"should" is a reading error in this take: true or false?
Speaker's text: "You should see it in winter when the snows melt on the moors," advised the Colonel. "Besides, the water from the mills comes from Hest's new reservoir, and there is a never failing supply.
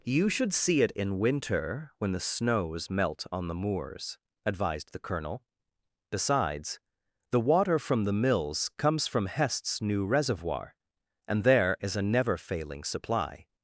false